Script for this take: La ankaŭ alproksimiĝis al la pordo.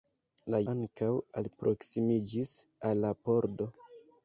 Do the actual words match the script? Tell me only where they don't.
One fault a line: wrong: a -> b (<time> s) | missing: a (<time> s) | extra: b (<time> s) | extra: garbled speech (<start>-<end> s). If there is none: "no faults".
no faults